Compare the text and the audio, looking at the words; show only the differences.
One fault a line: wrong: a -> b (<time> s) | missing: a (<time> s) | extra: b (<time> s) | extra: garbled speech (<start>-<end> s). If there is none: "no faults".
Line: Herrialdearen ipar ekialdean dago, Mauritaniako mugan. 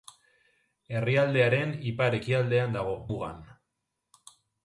missing: Mauritaniako (2.9 s)